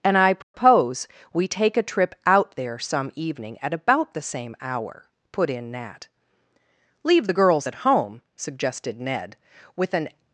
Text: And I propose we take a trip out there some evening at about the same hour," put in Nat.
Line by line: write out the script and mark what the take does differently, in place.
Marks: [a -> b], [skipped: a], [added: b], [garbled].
And I propose we take a trip out there some evening at about the same hour," put in Nat. [added: Leave the girls at home suggested Ned with an]